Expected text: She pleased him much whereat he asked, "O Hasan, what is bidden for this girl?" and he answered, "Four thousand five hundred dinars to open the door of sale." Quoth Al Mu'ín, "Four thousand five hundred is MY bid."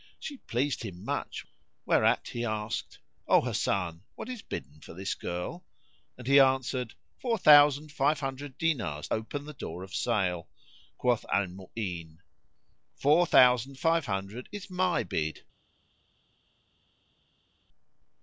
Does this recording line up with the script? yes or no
no